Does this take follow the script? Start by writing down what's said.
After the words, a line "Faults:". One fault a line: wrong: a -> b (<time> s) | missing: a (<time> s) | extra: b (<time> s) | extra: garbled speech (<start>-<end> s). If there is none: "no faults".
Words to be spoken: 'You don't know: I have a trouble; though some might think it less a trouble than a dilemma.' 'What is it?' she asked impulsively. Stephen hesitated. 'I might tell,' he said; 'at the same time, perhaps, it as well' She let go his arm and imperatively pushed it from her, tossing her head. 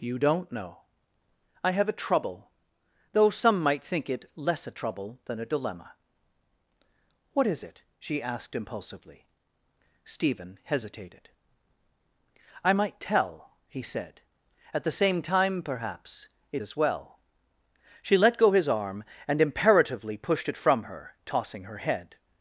'You don't know: I have a trouble; though some might think it less a trouble than a dilemma.' 'What is it?' she asked impulsively. Stephen hesitated. 'I might tell,' he said; 'at the same time, perhaps, it as well' She let go his arm and imperatively pushed it from her, tossing her head.
Faults:
no faults